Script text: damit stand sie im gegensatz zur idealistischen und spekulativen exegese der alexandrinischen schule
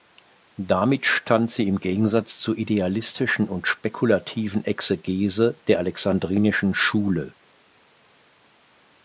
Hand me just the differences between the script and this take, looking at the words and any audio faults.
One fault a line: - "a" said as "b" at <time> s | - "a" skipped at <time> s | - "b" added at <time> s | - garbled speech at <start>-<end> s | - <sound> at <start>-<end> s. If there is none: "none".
none